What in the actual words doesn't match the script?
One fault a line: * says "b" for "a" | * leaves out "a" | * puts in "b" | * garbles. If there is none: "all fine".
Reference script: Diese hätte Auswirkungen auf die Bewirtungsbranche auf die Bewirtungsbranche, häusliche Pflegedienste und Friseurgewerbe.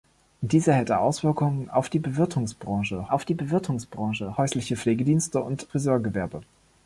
all fine